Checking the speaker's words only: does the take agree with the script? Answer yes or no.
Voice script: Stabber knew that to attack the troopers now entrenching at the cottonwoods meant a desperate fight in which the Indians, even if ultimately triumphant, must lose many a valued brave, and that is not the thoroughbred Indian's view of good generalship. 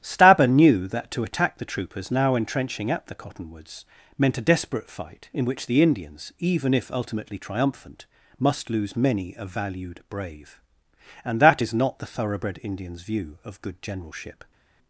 yes